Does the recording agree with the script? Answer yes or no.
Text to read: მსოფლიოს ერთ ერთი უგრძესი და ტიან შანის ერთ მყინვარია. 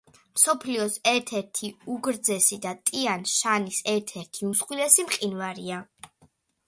no